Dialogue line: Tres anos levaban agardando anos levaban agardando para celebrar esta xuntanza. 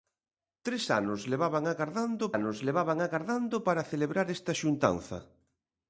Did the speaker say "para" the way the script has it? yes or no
yes